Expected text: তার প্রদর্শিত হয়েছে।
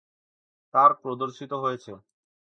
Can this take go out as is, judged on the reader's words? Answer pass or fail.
pass